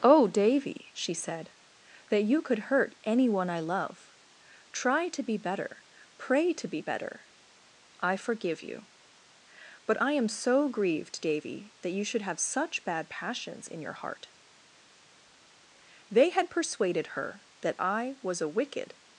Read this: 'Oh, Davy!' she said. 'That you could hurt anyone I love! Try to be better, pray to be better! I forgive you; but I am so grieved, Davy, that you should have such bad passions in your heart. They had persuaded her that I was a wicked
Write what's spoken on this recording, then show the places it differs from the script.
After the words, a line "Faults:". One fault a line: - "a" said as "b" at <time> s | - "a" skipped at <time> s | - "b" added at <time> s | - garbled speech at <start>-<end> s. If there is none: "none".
'Oh, Davy!' she said. 'That you could hurt anyone I love! Try to be better, pray to be better! I forgive you; but I am so grieved, Davy, that you should have such bad passions in your heart. They had persuaded her that I was a wicked
Faults:
none